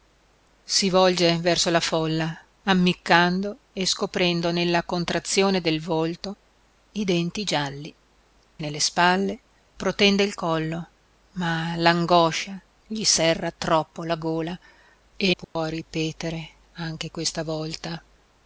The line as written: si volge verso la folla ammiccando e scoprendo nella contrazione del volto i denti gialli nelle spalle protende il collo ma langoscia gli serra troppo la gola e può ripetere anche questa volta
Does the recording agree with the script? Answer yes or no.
yes